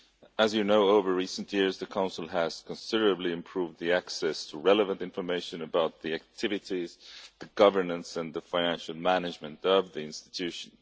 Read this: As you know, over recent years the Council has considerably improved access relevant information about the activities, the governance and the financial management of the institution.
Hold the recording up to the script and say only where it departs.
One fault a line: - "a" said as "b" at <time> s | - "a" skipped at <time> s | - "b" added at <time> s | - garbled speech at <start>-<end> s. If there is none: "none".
- "to" added at 4.5 s